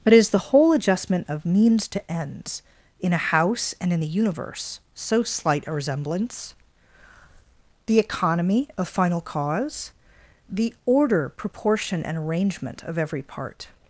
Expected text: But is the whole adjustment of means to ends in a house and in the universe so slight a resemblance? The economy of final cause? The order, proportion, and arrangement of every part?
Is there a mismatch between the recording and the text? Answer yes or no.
no